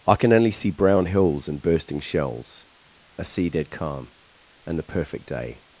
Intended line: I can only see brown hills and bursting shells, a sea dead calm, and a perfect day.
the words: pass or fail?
fail